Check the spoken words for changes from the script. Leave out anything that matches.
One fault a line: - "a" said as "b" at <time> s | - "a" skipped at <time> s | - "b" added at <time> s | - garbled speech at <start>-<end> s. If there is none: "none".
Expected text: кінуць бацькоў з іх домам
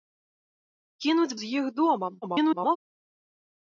- "бацькоў" skipped at 1.4 s
- garbled speech at 2.2-2.8 s